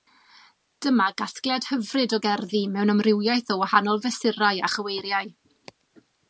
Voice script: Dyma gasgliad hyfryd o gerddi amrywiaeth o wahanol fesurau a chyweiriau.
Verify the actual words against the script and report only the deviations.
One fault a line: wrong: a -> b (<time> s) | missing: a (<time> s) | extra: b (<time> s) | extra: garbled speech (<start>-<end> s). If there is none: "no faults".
extra: mewn (2.8 s)